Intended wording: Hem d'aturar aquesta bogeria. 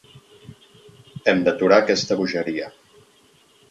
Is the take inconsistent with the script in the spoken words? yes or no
no